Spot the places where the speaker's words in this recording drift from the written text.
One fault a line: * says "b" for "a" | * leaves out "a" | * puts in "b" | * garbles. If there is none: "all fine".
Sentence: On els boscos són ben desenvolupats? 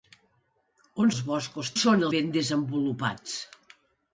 all fine